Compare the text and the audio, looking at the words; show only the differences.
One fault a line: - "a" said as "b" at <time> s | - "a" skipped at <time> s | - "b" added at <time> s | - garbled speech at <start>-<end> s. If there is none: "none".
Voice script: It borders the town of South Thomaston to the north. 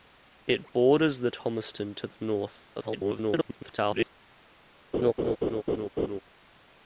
- "town of South" skipped at 1.3 s
- garbled speech at 2.7-4.1 s